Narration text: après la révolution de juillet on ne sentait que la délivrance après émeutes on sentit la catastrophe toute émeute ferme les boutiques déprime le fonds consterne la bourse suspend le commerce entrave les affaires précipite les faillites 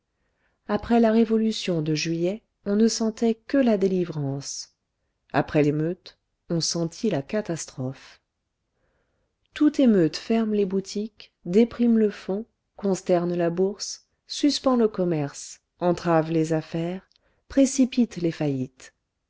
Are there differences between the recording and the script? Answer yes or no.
no